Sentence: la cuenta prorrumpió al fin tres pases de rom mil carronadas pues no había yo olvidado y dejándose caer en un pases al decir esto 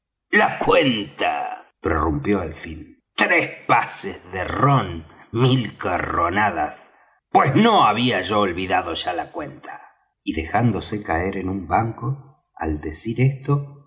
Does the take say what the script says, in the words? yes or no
no